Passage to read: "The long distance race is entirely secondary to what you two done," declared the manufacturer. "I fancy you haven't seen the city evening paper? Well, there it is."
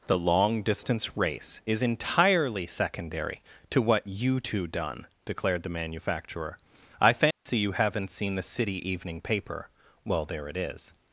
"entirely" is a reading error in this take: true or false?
false